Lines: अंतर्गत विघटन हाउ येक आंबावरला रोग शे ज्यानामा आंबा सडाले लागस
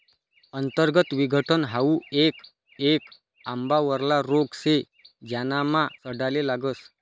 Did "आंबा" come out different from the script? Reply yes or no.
yes